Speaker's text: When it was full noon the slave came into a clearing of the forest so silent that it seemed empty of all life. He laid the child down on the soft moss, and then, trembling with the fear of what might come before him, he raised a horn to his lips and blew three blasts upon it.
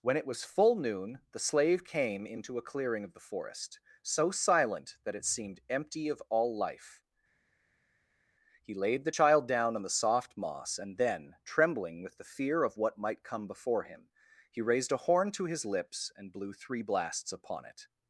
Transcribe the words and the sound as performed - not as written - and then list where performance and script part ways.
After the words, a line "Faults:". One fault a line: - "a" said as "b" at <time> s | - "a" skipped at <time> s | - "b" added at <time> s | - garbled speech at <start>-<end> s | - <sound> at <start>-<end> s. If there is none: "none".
When it was full noon the slave came into a clearing of the forest so silent that it seemed empty of all life. He laid the child down on the soft moss, and then, trembling with the fear of what might come before him, he raised a horn to his lips and blew three blasts upon it.
Faults:
none